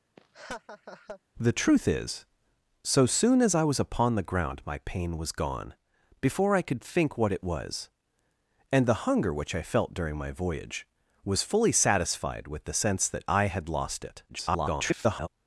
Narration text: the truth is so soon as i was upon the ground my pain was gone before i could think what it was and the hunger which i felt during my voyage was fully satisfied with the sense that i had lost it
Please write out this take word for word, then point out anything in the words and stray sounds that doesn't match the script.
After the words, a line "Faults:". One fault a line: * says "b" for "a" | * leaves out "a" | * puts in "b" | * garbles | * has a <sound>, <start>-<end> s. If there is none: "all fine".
the truth is so soon as i was upon the ground my pain was gone before i could think what it was and the hunger which i felt during my voyage was fully satisfied with the sense that i had lost it [garbled]
Faults:
* has a laugh, 0.2-1.2 s
* garbles